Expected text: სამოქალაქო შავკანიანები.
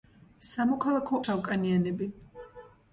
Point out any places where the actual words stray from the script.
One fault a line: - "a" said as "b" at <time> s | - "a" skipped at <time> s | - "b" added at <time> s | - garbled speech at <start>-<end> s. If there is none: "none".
none